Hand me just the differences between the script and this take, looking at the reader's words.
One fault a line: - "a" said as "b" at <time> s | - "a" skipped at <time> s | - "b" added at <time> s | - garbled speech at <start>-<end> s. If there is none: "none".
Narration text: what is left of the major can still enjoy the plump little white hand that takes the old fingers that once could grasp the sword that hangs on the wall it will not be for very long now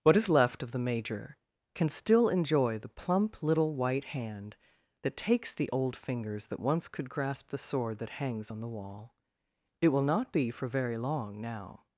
none